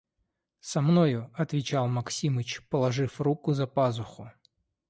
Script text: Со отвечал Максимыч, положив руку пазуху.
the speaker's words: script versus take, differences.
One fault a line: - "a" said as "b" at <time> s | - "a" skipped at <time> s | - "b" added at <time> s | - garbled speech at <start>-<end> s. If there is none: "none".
- "мною" added at 0.8 s
- "за" added at 3.5 s